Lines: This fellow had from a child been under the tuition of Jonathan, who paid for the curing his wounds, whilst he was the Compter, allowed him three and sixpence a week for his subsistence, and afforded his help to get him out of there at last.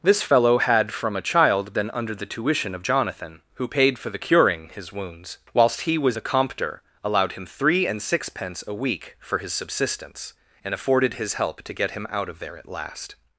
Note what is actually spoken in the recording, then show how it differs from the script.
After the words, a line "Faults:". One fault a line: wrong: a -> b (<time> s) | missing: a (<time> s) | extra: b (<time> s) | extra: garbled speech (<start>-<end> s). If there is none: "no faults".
This fellow had from a child been under the tuition of Jonathan, who paid for the curing his wounds, whilst he was the Compter, allowed him three and sixpence a week for his subsistence, and afforded his help to get him out of there at last.
Faults:
no faults